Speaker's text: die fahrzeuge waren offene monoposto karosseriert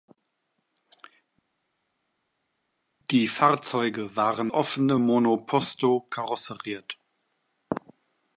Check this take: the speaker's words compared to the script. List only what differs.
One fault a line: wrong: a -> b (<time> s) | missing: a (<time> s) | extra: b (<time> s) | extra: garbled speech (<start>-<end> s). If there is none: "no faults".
no faults